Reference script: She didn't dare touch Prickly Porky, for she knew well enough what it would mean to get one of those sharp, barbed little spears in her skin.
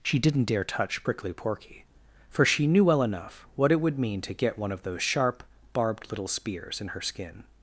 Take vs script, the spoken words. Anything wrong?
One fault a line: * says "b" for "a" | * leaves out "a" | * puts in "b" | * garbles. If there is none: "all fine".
all fine